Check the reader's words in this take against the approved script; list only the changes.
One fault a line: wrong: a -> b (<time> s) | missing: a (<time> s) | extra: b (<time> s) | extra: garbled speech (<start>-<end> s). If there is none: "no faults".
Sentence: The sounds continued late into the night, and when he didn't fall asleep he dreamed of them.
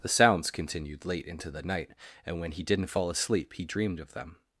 no faults